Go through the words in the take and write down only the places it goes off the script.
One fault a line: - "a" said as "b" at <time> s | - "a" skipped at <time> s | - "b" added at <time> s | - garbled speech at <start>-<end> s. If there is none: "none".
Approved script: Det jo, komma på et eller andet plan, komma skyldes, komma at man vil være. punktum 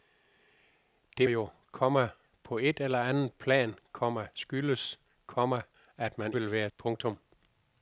none